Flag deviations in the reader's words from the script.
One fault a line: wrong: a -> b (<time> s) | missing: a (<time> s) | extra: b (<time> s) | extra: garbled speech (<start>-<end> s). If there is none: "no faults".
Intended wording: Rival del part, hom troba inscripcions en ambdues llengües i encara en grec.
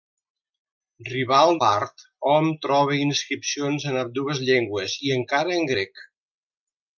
missing: del (1.5 s)